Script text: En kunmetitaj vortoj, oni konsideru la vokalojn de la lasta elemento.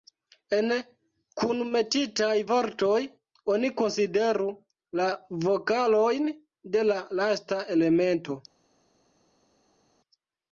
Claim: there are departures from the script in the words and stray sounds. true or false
false